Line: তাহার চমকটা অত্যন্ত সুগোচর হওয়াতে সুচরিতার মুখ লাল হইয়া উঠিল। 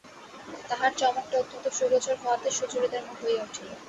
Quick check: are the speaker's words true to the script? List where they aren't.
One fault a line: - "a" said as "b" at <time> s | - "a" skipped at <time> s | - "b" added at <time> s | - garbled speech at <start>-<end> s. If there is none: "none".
- "লাল" skipped at 3.2 s